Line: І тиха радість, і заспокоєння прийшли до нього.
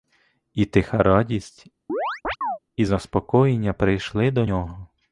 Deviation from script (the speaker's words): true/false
false